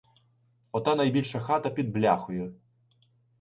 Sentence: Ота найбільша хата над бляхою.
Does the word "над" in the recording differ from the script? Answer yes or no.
yes